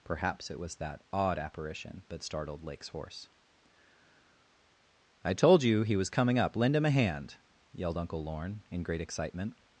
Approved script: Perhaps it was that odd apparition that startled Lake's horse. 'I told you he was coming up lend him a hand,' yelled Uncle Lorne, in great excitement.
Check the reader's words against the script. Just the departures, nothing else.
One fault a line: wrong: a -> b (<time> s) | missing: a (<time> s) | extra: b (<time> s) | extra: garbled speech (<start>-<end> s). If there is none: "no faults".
no faults